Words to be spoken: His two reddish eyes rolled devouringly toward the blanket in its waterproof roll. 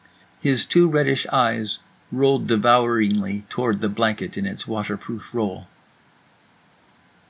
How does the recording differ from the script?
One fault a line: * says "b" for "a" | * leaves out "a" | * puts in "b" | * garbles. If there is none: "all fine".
all fine